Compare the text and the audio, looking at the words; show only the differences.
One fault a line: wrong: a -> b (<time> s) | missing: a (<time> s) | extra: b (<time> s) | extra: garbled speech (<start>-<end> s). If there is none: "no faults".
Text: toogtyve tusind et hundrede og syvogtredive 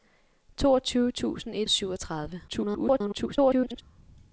missing: hundrede (1.7 s)
extra: garbled speech (2.5-3.8 s)